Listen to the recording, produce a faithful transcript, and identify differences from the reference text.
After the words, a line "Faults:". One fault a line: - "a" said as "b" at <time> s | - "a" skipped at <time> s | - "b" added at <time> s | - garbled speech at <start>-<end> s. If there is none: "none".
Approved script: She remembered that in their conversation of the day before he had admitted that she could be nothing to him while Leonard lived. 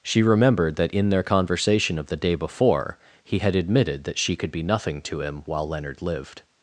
She remembered that in their conversation of the day before he had admitted that she could be nothing to him while Leonard lived.
Faults:
none